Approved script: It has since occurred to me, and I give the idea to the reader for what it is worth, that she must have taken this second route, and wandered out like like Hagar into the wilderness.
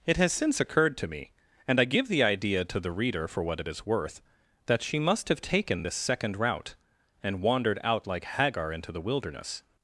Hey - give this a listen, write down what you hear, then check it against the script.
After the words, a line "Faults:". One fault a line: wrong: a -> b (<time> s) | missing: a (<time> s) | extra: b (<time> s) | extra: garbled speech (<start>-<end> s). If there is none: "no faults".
It has since occurred to me, and I give the idea to the reader for what it is worth, that she must have taken this second route, and wandered out like Hagar into the wilderness.
Faults:
missing: like (8.2 s)